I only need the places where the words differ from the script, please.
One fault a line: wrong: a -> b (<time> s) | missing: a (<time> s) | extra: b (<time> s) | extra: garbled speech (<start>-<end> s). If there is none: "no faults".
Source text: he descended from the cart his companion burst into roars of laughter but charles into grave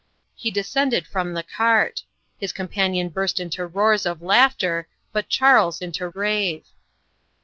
no faults